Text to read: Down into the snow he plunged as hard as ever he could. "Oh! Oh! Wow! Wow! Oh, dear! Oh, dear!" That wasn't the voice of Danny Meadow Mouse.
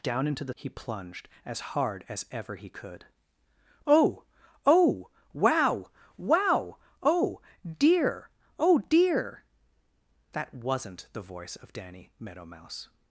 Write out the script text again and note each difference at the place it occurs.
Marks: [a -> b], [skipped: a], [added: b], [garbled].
Down into the [skipped: snow] he plunged as hard as ever he could. "Oh! Oh! Wow! Wow! Oh, dear! Oh, dear!" That wasn't the voice of Danny Meadow Mouse.